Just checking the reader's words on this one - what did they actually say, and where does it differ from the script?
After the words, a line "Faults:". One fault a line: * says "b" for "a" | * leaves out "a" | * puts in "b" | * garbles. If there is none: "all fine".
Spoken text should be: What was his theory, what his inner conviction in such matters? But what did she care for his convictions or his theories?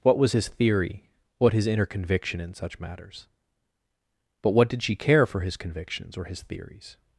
What was his theory, what his inner conviction in such matters? But what did she care for his convictions or his theories?
Faults:
all fine